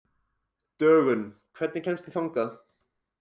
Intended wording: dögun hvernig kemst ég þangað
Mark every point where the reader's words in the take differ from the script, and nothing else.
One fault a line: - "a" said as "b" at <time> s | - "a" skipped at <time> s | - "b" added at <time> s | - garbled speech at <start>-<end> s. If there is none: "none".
none